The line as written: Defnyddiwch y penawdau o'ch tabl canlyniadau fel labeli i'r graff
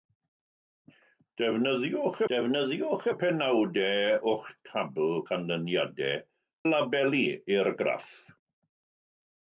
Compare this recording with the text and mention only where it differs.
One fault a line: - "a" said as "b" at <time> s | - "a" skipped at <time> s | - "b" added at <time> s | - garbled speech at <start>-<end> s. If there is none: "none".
- "defnyddiwch" added at 2.3 s
- "fel" skipped at 6.2 s